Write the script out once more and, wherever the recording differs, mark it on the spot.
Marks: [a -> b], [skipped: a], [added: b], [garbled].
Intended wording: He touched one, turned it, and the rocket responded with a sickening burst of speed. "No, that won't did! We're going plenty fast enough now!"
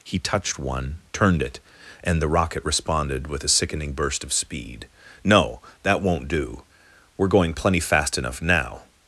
He touched one, turned it, and the rocket responded with a sickening burst of speed. "No, that won't [did! -> do] We're going plenty fast enough now!"